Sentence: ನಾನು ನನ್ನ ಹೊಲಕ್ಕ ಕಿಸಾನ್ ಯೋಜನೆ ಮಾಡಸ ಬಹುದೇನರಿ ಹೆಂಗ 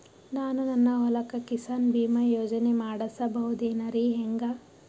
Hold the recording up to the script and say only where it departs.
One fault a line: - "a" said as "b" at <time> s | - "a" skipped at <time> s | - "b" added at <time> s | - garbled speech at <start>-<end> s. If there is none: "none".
- "ಬೀಮಾ" added at 1.9 s